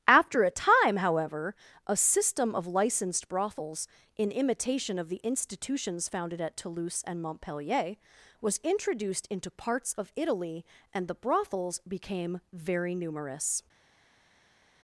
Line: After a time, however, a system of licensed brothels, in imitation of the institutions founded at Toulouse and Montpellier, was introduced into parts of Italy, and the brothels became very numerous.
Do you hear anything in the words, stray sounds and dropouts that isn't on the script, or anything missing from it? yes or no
no